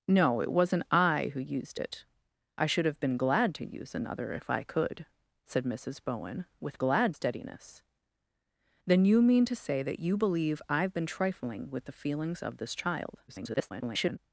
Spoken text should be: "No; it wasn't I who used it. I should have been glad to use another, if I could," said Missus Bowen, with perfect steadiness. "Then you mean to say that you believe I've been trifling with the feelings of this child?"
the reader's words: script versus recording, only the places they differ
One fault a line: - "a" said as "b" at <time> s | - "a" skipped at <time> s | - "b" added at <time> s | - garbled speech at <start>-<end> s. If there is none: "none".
- "perfect" said as "glad" at 6.8 s
- garbled speech at 13.3-14.2 s